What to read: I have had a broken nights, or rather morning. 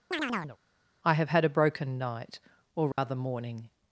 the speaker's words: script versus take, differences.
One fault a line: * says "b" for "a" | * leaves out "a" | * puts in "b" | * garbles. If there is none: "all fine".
* says "night" for "nights"